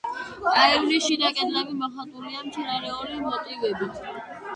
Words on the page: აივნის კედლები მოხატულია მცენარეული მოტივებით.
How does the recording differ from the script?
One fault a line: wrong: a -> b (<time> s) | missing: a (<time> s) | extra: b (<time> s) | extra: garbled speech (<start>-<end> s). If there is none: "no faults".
extra: შიდა (1.1 s)